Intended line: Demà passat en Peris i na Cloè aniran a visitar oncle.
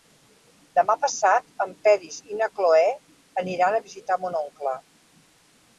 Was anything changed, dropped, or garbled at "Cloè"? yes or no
no